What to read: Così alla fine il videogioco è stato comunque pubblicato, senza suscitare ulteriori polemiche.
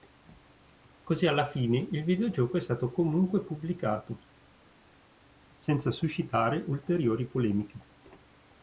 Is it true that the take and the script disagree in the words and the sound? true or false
false